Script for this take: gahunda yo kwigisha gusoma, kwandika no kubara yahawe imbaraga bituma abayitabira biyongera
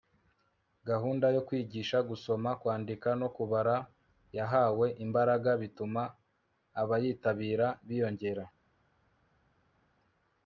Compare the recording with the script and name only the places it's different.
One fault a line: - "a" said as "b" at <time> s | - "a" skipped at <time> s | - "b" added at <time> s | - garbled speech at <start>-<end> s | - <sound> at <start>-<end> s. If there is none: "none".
none